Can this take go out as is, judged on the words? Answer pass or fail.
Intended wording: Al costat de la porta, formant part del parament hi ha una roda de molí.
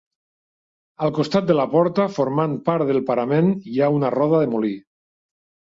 pass